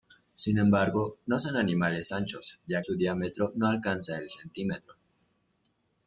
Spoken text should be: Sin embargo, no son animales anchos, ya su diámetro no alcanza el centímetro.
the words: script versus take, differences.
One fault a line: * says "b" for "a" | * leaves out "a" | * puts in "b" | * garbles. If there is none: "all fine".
all fine